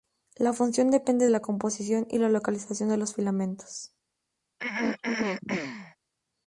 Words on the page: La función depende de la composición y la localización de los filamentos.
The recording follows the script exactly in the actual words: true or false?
false